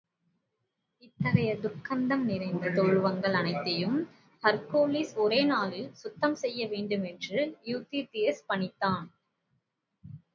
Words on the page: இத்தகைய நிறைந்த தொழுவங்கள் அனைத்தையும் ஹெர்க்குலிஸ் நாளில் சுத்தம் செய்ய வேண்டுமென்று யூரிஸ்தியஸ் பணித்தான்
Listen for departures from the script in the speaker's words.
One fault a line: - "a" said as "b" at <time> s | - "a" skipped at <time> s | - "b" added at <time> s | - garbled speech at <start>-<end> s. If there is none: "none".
- "துர்க்கந்தம்" added at 1.5 s
- "ஒரே" added at 5.2 s